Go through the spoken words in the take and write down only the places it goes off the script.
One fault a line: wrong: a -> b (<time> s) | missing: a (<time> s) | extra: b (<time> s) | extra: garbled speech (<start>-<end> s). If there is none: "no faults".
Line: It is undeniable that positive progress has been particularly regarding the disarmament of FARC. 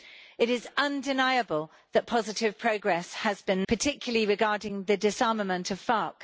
no faults